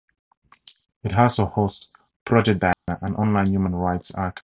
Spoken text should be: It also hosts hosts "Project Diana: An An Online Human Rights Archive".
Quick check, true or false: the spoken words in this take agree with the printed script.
false